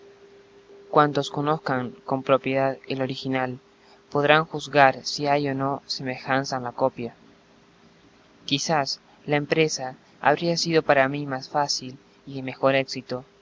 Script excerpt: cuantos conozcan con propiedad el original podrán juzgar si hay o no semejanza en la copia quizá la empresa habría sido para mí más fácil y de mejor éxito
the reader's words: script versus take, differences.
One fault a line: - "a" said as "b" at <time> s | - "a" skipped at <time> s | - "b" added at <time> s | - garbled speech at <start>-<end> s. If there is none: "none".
none